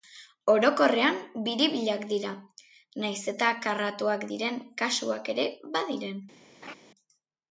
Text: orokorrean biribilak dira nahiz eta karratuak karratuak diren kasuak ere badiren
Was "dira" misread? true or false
false